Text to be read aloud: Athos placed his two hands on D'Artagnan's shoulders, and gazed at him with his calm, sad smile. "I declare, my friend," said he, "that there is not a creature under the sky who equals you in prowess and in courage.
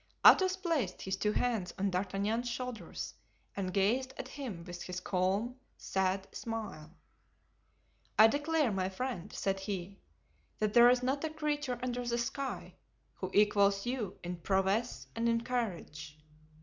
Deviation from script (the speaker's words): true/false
false